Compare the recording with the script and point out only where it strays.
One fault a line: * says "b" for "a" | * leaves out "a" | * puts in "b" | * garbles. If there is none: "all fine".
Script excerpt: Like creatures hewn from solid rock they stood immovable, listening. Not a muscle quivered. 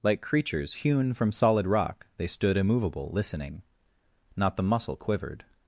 * says "the" for "a"